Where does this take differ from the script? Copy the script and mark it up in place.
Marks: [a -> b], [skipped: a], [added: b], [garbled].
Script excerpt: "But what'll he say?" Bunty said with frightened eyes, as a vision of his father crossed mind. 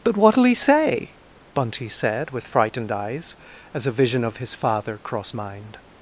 "But what'll he say?" Bunty said with frightened eyes, as a vision of his father crossed mind.